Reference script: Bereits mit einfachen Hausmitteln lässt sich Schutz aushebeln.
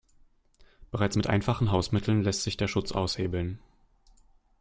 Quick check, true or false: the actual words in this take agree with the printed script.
false